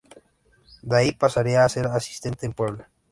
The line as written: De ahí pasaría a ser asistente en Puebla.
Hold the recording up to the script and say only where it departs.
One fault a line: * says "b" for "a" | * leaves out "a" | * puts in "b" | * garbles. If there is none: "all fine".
all fine